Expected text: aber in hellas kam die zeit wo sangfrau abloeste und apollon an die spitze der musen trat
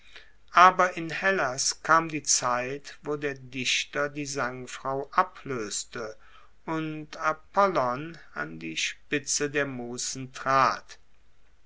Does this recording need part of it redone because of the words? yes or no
yes